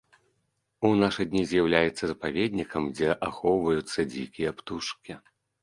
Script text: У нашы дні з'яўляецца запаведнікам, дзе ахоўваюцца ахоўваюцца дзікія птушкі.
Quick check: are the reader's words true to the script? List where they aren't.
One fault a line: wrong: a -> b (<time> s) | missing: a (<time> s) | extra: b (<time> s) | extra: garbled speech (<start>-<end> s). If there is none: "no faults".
missing: ахоўваюцца (4.1 s)